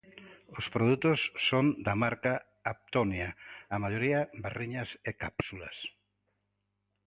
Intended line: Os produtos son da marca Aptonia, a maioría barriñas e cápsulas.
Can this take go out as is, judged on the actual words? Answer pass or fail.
pass